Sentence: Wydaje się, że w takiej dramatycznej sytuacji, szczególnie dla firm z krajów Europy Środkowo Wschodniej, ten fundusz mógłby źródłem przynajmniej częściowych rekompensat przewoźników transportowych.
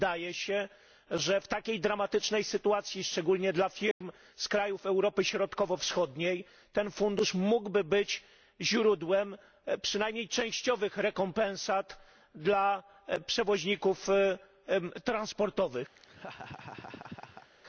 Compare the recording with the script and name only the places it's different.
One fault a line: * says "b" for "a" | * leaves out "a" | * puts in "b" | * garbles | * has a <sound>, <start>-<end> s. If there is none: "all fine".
* has a dropout, 3.9-4.0 s
* puts in "być"
* puts in "dla"
* has a laugh, 15.9-17.5 s